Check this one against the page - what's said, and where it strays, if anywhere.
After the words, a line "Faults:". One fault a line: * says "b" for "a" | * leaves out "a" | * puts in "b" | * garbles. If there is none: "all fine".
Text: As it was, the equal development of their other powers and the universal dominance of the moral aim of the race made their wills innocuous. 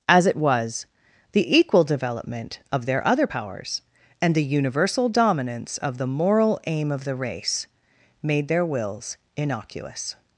As it was, the equal development of their other powers and the universal dominance of the moral aim of the race made their wills innocuous.
Faults:
all fine